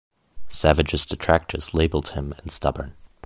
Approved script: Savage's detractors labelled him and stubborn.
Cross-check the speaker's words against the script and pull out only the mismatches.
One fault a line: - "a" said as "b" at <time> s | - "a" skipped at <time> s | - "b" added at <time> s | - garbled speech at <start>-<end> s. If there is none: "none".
none